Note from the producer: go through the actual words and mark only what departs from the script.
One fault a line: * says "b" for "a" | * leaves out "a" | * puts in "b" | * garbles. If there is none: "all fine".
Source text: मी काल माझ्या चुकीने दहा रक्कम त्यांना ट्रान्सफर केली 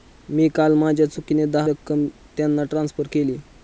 all fine